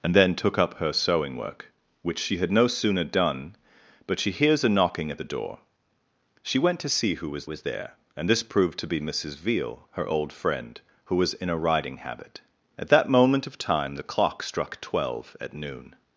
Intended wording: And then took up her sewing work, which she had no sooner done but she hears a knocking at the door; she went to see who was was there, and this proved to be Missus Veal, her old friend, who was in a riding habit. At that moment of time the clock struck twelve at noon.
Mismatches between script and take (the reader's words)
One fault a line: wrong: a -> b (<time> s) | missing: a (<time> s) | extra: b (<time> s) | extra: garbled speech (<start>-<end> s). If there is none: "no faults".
no faults